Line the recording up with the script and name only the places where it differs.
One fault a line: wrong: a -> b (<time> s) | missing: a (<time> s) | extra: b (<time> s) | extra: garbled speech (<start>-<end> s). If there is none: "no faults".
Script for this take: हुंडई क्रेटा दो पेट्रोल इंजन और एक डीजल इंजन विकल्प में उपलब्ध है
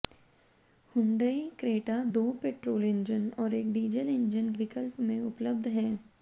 no faults